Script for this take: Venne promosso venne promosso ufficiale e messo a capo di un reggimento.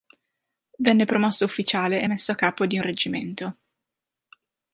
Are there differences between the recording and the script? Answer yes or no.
yes